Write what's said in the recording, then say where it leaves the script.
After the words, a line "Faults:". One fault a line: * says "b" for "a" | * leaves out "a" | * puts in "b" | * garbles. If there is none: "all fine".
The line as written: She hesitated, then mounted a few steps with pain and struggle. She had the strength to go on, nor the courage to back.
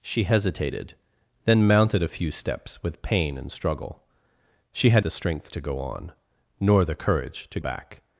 She hesitated, then mounted a few steps with pain and struggle. She had the strength to go on, nor the courage to back.
Faults:
all fine